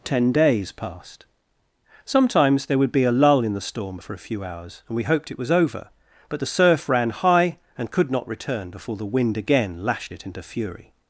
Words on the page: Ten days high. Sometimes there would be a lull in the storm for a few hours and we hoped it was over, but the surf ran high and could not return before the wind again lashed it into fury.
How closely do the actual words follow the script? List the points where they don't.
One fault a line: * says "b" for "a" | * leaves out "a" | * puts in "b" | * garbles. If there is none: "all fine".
* says "passed" for "high"